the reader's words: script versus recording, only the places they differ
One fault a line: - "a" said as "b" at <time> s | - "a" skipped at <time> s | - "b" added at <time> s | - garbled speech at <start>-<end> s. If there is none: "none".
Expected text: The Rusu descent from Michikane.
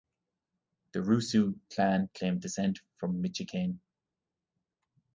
- "clan claimed" added at 1.7 s